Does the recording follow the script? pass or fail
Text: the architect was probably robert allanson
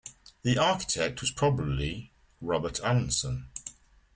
pass